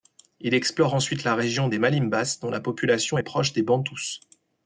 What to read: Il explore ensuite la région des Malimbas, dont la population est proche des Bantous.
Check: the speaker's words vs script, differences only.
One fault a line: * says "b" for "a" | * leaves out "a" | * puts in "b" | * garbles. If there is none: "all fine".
all fine